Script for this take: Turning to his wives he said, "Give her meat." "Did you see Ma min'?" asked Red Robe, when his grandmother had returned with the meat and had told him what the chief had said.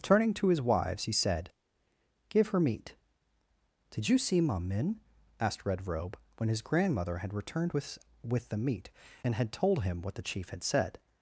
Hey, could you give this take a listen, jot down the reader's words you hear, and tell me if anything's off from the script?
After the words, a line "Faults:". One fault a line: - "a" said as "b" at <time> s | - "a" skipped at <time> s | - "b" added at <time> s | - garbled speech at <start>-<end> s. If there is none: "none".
Turning to his wives he said, "Give her meat." "Did you see Ma min'?" asked Red Robe, when his grandmother had returned with with the meat and had told him what the chief had said.
Faults:
- "with" added at 8.2 s